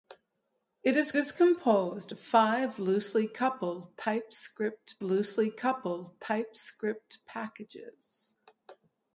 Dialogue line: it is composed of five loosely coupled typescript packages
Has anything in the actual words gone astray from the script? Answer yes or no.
yes